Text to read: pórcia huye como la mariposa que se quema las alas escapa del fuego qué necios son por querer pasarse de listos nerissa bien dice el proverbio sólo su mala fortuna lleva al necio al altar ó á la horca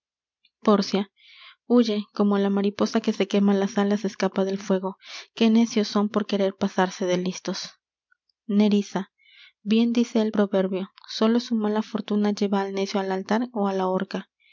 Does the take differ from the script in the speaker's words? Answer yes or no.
no